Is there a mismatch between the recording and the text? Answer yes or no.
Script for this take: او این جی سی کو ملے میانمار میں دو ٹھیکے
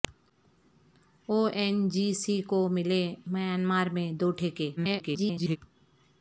yes